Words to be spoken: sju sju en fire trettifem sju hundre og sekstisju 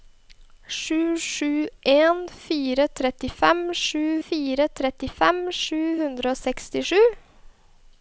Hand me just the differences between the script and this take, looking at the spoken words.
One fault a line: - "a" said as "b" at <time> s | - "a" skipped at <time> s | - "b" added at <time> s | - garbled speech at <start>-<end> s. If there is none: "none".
- "fire trettifem sju" added at 4.3 s